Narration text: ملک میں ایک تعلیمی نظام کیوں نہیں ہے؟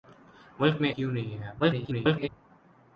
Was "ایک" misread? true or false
true